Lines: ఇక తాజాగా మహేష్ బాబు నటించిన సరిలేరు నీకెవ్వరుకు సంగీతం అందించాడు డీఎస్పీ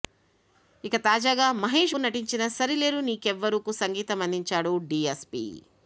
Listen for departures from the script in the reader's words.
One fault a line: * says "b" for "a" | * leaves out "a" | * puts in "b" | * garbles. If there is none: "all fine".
* leaves out "బాబు"